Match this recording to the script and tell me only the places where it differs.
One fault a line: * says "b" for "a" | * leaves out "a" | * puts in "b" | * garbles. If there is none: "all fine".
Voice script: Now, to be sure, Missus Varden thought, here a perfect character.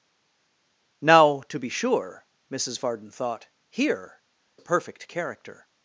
all fine